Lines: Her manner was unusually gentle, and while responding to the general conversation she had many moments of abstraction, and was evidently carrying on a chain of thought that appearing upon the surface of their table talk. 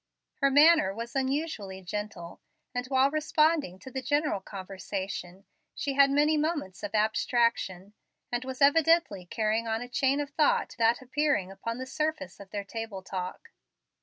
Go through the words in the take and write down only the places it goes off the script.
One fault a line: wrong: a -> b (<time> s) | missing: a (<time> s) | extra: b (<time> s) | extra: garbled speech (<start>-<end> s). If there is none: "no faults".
no faults